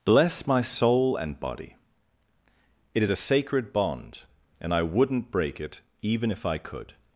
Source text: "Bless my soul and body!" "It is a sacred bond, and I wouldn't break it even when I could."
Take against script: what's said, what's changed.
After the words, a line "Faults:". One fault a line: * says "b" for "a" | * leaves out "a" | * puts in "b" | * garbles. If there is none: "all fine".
"Bless my soul and body!" "It is a sacred bond, and I wouldn't break it even if I could."
Faults:
* says "if" for "when"